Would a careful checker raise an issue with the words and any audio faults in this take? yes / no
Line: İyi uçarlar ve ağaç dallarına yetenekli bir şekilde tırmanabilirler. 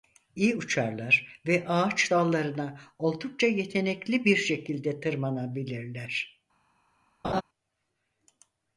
yes